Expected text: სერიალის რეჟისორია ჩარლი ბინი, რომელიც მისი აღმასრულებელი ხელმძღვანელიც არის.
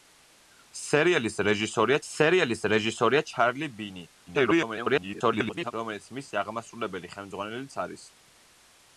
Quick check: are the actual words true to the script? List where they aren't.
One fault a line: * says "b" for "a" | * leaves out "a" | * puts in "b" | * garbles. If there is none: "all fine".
* puts in "სერიალის რეჟისორია"
* garbles